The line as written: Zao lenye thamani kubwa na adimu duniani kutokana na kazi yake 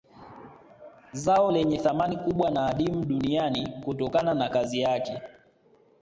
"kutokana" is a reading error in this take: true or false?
false